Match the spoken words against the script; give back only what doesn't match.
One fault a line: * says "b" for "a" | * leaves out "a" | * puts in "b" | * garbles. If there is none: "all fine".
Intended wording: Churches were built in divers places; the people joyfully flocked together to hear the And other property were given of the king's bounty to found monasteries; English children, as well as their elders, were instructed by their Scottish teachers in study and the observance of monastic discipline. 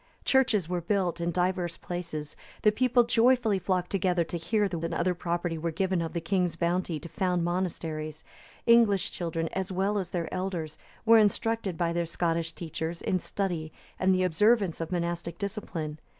all fine